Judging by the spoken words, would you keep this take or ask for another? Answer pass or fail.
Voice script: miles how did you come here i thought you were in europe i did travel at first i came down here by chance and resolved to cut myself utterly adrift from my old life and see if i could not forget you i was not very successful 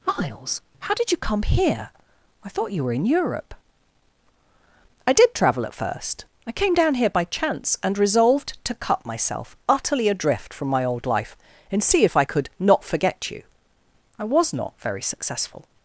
pass